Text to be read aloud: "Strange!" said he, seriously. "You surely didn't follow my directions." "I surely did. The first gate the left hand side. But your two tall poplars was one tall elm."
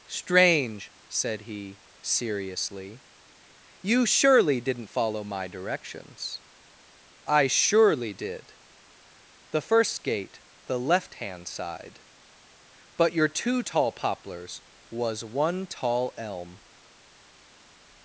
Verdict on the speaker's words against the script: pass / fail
pass